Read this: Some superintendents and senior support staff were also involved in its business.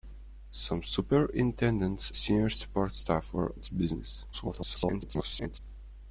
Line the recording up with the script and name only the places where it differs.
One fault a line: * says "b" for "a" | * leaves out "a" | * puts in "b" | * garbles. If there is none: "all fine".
* leaves out "and"
* leaves out "also involved in"
* garbles